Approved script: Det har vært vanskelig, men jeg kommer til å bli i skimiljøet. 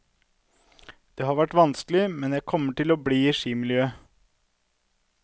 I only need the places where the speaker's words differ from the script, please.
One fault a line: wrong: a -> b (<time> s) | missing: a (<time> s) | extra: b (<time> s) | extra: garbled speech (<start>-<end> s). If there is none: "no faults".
no faults